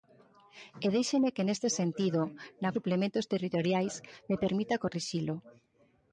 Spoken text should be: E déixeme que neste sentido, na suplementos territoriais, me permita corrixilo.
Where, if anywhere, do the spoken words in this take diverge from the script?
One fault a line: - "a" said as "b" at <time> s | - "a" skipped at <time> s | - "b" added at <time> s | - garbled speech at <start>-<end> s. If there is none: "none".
none